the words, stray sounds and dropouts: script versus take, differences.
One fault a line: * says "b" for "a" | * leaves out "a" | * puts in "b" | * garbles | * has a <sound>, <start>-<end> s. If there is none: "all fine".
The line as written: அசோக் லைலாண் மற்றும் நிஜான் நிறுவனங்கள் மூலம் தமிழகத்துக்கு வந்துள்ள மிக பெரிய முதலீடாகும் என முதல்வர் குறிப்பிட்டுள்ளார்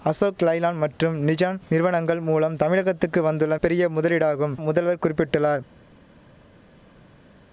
* leaves out "மிக"
* leaves out "என"